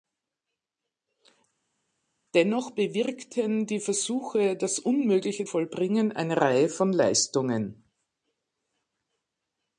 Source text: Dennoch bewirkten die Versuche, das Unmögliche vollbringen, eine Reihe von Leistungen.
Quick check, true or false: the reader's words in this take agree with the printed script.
true